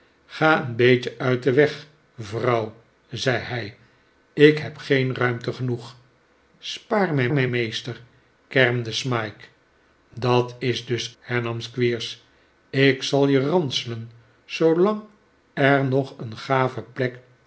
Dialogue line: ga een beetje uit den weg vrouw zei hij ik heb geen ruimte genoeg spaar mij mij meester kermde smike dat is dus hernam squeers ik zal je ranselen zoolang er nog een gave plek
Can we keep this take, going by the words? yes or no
yes